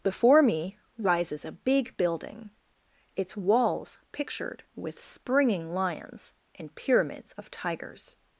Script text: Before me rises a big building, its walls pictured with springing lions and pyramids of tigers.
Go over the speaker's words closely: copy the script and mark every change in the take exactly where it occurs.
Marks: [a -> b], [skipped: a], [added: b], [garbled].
Before me rises a big building, its walls pictured with springing lions and pyramids of tigers.